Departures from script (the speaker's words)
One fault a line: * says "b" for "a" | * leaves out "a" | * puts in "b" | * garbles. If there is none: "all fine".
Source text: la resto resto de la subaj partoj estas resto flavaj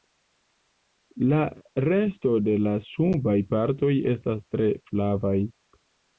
* leaves out "resto"
* says "tre" for "resto"